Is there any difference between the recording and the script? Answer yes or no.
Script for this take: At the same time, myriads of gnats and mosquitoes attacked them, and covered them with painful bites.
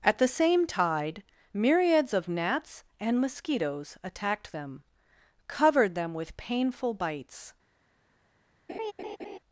yes